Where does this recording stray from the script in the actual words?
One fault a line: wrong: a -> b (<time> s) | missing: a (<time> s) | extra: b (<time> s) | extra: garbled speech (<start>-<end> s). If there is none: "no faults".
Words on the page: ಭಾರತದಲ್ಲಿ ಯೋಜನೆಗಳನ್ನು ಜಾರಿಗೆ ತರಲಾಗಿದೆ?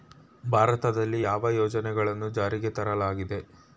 extra: ಯಾವ (1.2 s)